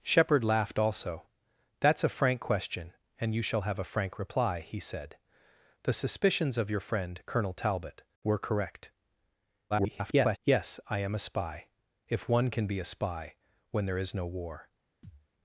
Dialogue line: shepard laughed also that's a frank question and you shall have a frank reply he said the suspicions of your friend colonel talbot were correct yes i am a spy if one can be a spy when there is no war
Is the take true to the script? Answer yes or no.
no